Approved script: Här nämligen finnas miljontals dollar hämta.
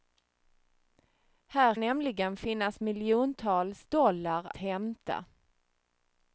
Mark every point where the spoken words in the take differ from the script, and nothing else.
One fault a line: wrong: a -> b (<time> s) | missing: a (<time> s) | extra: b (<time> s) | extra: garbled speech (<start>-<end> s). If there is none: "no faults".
no faults